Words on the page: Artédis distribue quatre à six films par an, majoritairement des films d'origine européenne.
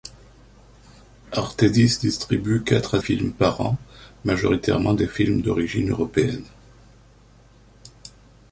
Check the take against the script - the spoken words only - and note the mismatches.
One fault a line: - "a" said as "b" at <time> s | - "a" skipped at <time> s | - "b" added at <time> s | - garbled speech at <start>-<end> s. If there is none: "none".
- "six" skipped at 3.0 s